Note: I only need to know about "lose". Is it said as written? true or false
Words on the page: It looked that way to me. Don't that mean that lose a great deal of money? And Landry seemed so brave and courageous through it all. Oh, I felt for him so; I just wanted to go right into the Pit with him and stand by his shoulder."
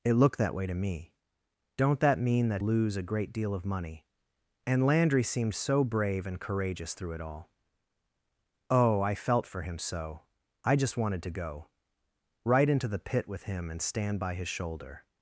true